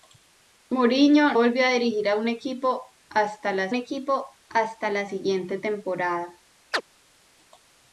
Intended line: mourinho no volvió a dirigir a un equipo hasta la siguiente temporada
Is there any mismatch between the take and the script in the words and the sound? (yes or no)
yes